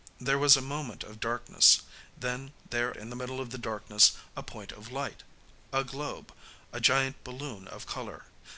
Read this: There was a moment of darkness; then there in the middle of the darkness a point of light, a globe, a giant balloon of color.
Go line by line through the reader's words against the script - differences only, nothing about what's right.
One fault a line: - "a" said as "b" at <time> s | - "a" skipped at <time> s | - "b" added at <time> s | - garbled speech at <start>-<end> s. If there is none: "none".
none